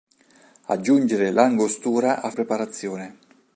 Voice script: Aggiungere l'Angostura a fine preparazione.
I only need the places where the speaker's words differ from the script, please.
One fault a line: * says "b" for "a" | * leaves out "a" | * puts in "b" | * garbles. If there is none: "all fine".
* leaves out "fine"